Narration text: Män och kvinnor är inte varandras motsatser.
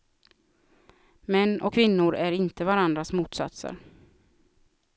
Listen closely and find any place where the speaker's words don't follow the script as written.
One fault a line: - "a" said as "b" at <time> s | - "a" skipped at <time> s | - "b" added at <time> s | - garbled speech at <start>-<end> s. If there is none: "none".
none